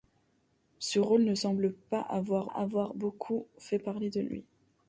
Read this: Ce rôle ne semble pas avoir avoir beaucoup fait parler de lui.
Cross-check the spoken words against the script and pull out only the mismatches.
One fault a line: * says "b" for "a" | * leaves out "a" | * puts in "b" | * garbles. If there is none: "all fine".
all fine